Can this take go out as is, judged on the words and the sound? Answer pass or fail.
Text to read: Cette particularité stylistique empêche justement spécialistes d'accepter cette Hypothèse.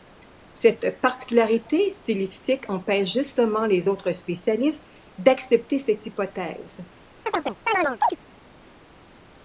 fail